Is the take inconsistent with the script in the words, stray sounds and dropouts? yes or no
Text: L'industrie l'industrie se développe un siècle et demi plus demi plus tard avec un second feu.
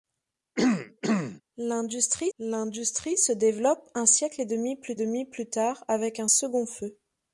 yes